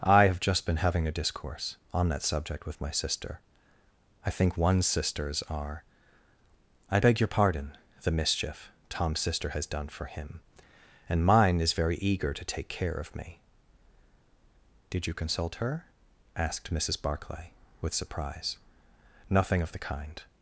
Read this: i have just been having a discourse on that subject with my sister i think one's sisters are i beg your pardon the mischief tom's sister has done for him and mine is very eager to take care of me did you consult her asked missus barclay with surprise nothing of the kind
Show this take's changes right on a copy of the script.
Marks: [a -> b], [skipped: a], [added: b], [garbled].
i have just been having a discourse on that subject with my sister i think one's sisters are i beg your pardon the mischief tom's sister has done for him and mine is very eager to take care of me did you consult her asked missus barclay with surprise nothing of the kind